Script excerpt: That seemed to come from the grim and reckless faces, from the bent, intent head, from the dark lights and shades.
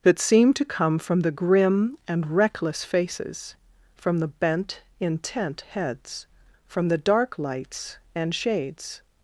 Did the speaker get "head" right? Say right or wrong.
wrong